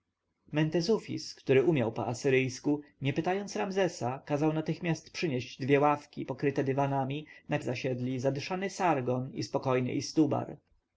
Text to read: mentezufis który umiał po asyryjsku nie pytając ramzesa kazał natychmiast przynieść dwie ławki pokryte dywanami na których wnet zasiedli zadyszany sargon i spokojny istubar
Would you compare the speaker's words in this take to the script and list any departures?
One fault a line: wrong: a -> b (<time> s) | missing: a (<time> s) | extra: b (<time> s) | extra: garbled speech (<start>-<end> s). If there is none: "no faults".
missing: których wnet (7.6 s)